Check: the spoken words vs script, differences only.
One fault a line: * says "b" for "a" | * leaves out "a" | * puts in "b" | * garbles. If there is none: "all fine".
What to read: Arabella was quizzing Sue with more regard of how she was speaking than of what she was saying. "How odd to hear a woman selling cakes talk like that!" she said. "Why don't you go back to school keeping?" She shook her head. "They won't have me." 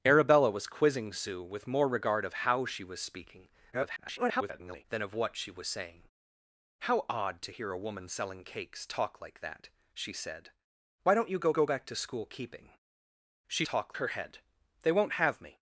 * garbles
* puts in "go"
* says "talk" for "shook"